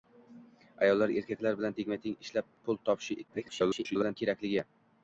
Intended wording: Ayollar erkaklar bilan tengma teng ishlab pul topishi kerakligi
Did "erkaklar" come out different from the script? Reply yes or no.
no